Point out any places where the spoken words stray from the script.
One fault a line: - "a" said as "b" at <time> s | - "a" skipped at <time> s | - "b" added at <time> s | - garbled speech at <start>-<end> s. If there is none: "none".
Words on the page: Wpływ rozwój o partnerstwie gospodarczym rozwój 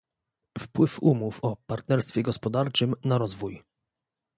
- "rozwój" said as "umów" at 1.0 s
- "na" added at 3.0 s